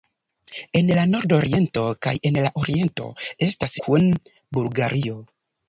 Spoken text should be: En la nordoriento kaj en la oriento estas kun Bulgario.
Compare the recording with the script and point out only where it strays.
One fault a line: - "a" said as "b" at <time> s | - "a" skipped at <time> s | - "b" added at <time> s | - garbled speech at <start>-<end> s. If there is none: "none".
none